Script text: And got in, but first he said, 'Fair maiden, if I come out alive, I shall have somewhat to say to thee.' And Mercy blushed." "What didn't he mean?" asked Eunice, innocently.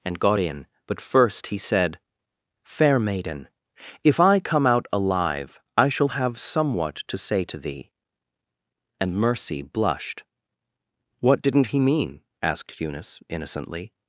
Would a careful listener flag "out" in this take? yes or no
no